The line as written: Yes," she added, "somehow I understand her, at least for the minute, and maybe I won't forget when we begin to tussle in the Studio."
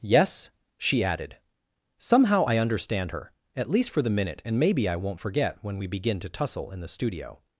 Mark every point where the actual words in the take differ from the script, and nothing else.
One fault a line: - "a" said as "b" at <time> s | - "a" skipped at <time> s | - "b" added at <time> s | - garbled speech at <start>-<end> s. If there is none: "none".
none